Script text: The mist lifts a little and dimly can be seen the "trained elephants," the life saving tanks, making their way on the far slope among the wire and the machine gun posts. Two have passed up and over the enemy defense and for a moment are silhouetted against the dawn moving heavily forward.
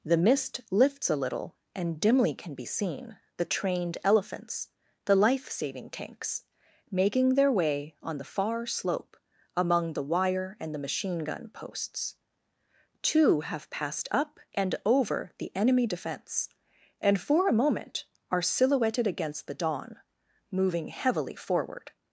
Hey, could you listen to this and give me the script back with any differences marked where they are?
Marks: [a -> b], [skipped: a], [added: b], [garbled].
The mist lifts a little and dimly can be seen the "trained elephants," the life saving tanks, making their way on the far slope among the wire and the machine gun posts. Two have passed up and over the enemy defense and for a moment are silhouetted against the dawn moving heavily forward.